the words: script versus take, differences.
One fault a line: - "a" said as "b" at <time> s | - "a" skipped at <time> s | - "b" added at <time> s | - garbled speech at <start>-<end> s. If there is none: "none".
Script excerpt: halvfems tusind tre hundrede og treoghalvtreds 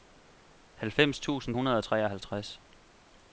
- "tre" skipped at 1.6 s